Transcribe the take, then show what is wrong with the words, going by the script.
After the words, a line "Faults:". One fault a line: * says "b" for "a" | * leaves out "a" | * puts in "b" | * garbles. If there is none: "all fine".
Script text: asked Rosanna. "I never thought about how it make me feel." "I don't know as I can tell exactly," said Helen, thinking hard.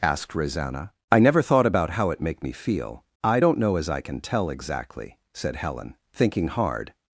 asked Rosanna. "I never thought about how it make me feel." "I don't know as I can tell exactly," said Helen, thinking hard.
Faults:
all fine